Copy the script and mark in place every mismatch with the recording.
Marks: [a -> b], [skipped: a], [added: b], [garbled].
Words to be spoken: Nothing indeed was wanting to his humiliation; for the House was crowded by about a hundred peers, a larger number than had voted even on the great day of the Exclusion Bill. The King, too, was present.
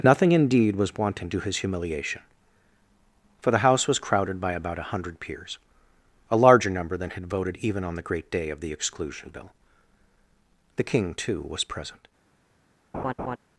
Nothing indeed was wanting to his humiliation; for the House was crowded by about a hundred peers, a larger number than had voted even on the great day of the Exclusion Bill. The King, too, was present.